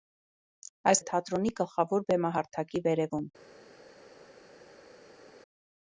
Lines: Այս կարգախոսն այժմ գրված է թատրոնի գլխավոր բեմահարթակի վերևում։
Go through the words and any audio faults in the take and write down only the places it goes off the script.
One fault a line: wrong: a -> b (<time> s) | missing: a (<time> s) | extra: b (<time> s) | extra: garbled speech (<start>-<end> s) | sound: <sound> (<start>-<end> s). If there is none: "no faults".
missing: կարգախոսն այժմ գրված (1.0 s)